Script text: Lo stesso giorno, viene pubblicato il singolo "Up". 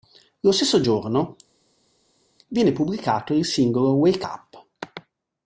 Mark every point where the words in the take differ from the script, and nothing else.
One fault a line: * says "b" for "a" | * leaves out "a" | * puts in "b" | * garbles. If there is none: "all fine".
* puts in "Wake"